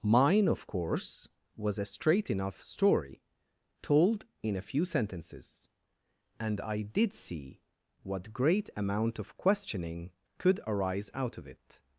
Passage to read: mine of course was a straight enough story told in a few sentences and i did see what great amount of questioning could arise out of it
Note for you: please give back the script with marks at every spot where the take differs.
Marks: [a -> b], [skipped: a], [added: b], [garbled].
mine of course was a straight enough story told in a few sentences and i did see what great amount of questioning could arise out of it